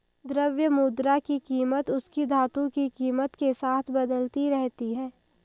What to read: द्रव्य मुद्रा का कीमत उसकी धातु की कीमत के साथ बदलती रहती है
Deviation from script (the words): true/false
true